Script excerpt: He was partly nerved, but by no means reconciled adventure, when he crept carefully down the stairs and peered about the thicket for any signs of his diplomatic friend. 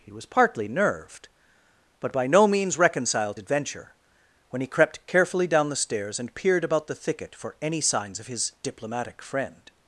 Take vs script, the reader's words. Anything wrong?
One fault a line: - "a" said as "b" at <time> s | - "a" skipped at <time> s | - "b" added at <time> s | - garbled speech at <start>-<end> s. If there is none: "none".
none